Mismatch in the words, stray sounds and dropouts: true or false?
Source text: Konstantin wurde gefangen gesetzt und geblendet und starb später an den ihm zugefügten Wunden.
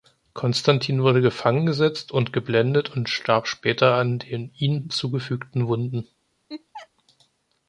true